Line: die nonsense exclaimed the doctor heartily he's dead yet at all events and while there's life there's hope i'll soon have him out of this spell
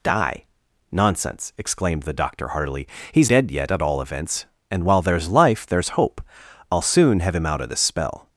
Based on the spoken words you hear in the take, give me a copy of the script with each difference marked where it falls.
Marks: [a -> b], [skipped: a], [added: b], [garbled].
die nonsense exclaimed the doctor heartily he's dead yet at all events and while there's life there's hope i'll soon have him out of this spell